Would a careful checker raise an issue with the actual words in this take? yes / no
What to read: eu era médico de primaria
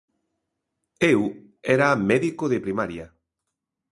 no